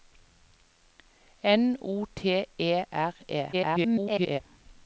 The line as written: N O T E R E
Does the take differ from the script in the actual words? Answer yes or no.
yes